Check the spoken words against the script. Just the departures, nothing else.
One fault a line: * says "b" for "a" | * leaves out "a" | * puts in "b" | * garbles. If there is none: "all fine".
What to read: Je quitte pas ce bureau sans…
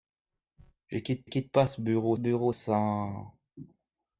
* puts in "quitte"
* puts in "bureau"